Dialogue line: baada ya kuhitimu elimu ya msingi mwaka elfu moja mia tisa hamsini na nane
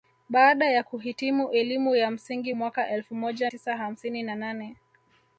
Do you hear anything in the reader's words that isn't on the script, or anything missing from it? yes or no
yes